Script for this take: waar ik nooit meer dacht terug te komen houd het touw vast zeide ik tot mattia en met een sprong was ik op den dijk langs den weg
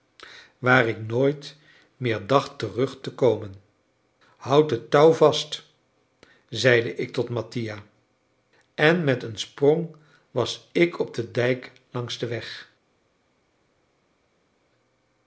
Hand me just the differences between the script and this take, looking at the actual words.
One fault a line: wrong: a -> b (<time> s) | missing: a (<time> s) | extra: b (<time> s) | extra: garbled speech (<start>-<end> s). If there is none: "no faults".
no faults